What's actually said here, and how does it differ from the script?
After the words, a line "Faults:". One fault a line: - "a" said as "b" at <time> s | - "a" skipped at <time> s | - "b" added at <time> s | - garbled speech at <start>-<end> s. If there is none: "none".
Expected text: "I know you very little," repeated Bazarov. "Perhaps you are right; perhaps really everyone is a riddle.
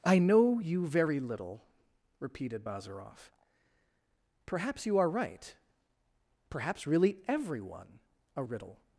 "I know you very little," repeated Bazarov. "Perhaps you are right; perhaps really everyone a riddle.
Faults:
- "is" skipped at 8.0 s